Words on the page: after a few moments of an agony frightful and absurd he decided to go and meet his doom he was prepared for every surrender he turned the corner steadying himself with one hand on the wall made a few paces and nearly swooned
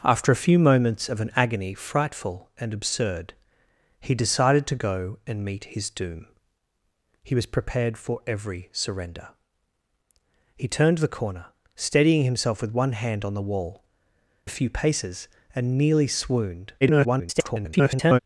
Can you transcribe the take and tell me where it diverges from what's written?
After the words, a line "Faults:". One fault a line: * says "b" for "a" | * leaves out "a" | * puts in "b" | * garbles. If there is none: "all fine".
after a few moments of an agony frightful and absurd he decided to go and meet his doom he was prepared for every surrender he turned the corner steadying himself with one hand on the wall a few paces and nearly swooned [garbled]
Faults:
* leaves out "made"
* garbles